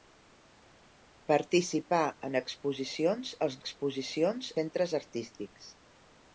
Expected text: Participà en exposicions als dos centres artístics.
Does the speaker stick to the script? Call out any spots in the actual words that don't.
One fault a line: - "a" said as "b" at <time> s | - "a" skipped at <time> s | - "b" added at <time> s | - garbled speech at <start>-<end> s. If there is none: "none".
- "dos" said as "exposicions" at 3.6 s